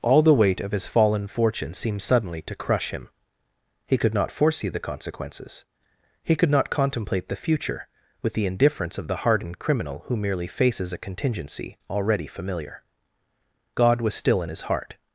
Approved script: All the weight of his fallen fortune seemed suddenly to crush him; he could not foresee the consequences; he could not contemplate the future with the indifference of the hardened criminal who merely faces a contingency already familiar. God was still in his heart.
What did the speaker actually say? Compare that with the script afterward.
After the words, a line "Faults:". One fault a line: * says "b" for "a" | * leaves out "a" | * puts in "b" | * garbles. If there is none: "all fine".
All the weight of his fallen fortune seemed suddenly to crush him; he could not foresee the consequences; he could not contemplate the future with the indifference of the hardened criminal who merely faces a contingency already familiar. God was still in his heart.
Faults:
all fine